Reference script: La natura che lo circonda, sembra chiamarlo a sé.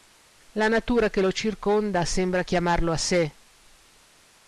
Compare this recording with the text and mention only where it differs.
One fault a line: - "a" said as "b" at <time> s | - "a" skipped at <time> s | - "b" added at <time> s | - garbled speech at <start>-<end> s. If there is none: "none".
none